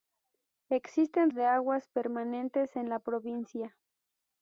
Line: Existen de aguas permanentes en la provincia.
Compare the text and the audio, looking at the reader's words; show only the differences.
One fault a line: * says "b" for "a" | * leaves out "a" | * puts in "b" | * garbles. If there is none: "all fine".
all fine